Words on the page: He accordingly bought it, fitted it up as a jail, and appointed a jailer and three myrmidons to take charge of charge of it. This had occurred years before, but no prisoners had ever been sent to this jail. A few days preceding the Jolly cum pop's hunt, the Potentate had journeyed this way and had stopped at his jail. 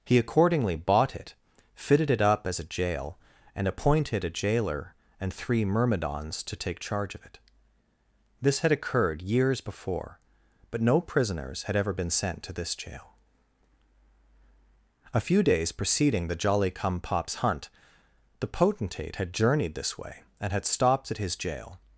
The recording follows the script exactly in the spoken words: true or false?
false